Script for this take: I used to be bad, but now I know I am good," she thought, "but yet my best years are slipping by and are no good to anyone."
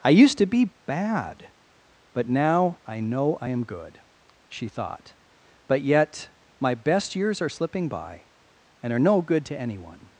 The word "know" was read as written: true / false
true